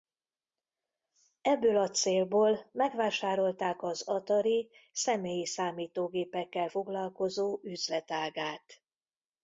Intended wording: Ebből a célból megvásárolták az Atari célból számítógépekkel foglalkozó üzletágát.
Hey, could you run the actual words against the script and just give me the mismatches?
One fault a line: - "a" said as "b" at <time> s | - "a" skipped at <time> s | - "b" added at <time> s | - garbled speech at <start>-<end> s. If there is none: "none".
- "célból" said as "személyi" at 4.9 s